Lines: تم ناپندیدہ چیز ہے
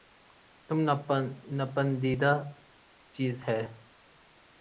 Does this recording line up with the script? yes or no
yes